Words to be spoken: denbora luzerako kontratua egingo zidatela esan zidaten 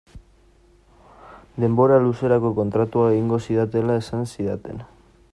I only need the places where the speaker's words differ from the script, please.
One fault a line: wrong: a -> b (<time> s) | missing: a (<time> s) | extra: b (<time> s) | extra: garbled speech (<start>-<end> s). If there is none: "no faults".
no faults